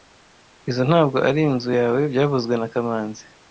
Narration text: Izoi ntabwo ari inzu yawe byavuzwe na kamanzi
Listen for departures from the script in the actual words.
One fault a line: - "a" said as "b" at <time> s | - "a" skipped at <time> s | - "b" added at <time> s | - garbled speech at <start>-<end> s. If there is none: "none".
none